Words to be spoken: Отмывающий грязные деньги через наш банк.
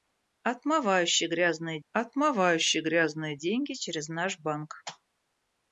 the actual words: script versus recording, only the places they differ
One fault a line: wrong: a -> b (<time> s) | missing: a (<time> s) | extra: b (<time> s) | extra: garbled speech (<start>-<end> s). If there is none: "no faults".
extra: отмывающий грязные (1.9 s)